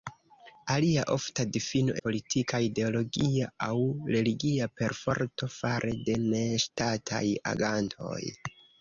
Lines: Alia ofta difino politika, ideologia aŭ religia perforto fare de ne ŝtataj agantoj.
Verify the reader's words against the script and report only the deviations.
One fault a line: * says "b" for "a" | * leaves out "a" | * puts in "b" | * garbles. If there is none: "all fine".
all fine